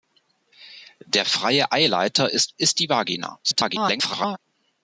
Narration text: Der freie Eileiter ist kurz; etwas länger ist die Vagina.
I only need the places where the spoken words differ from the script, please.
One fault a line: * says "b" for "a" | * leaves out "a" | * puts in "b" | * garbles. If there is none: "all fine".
* leaves out "kurz etwas länger"
* garbles